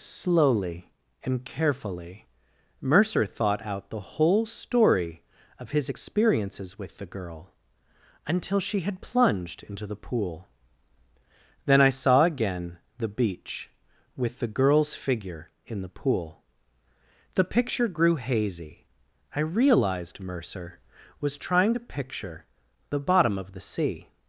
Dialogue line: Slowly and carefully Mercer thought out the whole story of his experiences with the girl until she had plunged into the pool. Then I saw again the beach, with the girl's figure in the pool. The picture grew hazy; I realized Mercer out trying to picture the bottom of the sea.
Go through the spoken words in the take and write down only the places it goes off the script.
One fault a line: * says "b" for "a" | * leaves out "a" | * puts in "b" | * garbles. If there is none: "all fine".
* says "was" for "out"